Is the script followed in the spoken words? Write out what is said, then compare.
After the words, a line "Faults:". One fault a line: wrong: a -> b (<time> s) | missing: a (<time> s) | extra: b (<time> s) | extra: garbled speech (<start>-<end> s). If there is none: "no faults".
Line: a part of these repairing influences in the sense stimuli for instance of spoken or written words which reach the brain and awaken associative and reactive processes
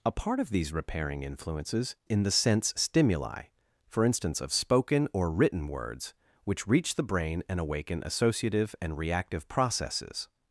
a part of these repairing influences in the sense stimuli for instance of spoken or written words which reach the brain and awaken associative and reactive processes
Faults:
no faults